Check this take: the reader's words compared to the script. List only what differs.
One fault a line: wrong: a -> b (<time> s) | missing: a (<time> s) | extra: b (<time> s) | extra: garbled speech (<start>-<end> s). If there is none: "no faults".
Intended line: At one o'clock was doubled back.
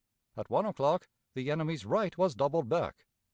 extra: the enemy's right (1.3 s)